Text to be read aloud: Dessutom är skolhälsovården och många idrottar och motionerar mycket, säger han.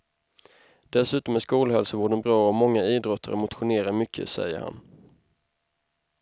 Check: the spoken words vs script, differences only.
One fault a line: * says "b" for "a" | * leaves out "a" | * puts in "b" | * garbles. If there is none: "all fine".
* puts in "bra"